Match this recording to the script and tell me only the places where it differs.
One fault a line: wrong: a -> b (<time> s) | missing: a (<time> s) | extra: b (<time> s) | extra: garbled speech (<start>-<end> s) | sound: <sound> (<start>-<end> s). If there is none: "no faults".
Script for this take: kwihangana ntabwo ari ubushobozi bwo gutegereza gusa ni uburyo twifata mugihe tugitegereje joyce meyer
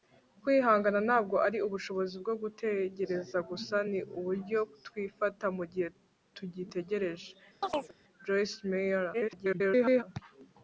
sound: chirp (7.6-7.9 s)
extra: garbled speech (9.1-10.0 s)